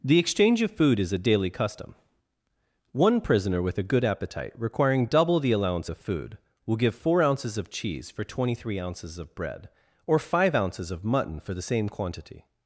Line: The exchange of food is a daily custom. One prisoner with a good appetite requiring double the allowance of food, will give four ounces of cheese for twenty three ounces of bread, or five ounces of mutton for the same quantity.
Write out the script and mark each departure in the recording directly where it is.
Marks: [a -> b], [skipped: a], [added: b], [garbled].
The exchange of food is a daily custom. One prisoner with a good appetite requiring double the allowance of food, will give four ounces of cheese for twenty three ounces of bread, or five ounces of mutton for the same quantity.